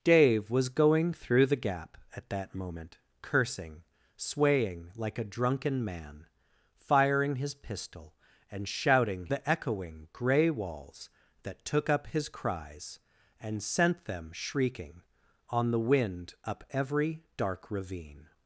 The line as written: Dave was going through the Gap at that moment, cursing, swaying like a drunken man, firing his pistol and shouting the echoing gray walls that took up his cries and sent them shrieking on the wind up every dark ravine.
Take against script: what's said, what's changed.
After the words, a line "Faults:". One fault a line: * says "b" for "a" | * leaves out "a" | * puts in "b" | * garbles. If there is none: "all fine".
Dave was going through the Gap at that moment, cursing, swaying like a drunken man, firing his pistol and shouting the echoing gray walls that took up his cries and sent them shrieking on the wind up every dark ravine.
Faults:
all fine